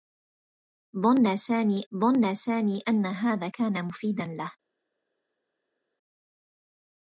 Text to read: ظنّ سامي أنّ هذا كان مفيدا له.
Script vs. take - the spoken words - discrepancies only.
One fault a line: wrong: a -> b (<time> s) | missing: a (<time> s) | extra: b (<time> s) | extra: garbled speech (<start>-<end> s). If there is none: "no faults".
extra: ظنّ سامي (2.0 s)